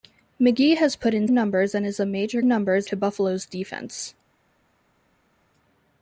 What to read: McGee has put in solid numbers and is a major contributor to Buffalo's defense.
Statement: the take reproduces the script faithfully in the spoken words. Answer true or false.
false